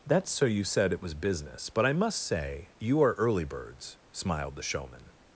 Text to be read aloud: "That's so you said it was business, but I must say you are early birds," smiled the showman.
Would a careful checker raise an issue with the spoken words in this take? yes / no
no